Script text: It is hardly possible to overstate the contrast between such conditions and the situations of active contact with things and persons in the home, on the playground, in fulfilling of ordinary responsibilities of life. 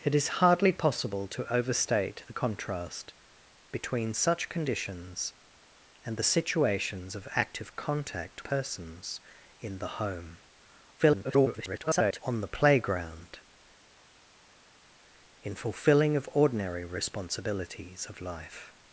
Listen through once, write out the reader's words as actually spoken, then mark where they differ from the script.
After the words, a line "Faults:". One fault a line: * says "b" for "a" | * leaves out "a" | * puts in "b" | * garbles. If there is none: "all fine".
It is hardly possible to overstate the contrast between such conditions and the situations of active contact persons in the home, [garbled] on the playground, in fulfilling of ordinary responsibilities of life.
Faults:
* leaves out "with things and"
* garbles